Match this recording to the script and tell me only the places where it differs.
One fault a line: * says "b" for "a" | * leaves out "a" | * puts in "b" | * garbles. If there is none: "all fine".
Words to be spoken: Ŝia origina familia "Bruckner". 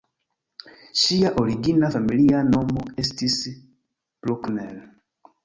* puts in "nomo estis"